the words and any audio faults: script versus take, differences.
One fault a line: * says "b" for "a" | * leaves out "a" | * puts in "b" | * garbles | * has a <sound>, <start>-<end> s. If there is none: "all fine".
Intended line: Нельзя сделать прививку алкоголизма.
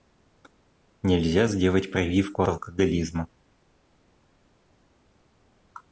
all fine